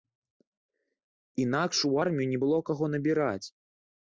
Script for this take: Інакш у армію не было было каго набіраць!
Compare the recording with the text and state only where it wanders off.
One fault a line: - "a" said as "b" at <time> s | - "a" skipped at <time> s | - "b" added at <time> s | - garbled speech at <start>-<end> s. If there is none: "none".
- "было" skipped at 2.6 s